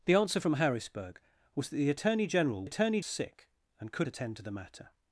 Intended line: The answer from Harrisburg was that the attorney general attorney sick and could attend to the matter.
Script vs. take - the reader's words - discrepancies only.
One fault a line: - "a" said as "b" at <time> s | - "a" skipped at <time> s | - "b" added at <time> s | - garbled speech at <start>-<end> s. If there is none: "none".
none